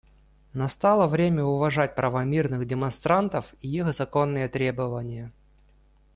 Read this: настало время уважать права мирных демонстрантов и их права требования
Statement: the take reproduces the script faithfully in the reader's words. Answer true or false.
false